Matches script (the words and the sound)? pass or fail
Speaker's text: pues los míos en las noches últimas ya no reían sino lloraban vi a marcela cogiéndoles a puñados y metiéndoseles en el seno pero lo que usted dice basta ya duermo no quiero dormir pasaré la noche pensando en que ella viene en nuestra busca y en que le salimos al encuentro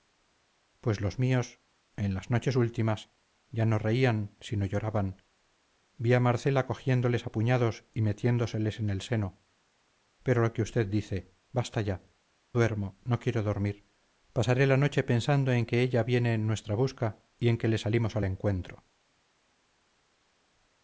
pass